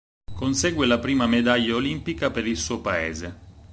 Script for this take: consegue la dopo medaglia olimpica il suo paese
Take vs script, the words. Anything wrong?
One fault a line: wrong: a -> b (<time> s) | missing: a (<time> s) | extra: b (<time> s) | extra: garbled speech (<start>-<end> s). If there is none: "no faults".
wrong: dopo -> prima (1.0 s)
extra: per (2.3 s)